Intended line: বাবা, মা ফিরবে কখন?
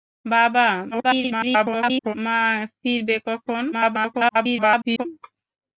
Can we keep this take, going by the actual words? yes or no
no